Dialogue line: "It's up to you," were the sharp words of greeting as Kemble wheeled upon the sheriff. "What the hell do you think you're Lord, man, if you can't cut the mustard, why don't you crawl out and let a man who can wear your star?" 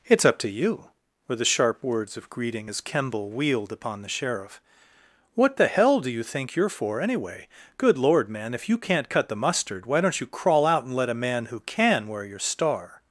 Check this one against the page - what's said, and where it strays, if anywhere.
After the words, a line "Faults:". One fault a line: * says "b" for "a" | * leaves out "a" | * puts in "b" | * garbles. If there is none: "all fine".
"It's up to you," were the sharp words of greeting as Kemble wheeled upon the sheriff. "What the hell do you think you're for, anyway? Good Lord, man, if you can't cut the mustard, why don't you crawl out and let a man who can wear your star?"
Faults:
* puts in "for anyway Good"